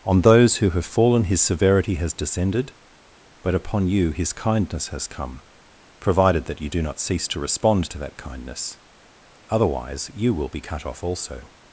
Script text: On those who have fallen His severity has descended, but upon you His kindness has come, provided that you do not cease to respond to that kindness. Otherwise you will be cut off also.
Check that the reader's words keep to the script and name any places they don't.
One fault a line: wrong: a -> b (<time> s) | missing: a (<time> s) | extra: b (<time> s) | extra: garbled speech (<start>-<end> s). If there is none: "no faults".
no faults